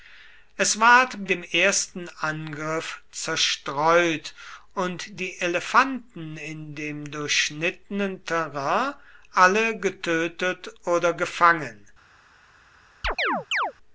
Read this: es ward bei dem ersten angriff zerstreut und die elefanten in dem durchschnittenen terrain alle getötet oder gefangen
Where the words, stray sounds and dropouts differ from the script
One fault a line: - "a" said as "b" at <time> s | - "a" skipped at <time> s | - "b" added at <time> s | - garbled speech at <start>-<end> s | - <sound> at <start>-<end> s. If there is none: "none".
- "bei" skipped at 1.3 s
- chirp at 13.0-13.7 s